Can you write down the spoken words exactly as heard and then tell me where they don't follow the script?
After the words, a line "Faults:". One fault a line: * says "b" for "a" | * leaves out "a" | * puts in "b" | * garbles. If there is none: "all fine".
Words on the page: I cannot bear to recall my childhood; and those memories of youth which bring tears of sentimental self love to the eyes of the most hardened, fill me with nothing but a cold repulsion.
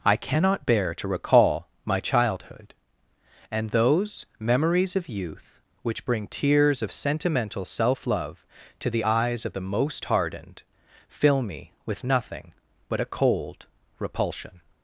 I cannot bear to recall my childhood; and those memories of youth which bring tears of sentimental self love to the eyes of the most hardened, fill me with nothing but a cold repulsion.
Faults:
all fine